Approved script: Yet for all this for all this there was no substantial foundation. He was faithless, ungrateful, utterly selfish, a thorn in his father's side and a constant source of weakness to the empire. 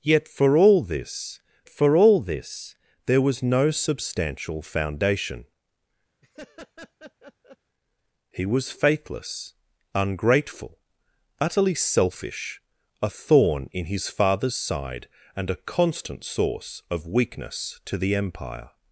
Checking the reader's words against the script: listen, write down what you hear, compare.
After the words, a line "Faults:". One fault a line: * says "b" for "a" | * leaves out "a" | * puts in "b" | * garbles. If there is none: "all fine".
Yet for all this for all this there was no substantial foundation. He was faithless, ungrateful, utterly selfish, a thorn in his father's side and a constant source of weakness to the empire.
Faults:
all fine